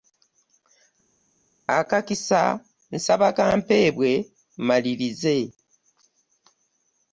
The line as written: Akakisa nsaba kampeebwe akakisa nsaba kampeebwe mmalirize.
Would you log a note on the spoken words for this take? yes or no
yes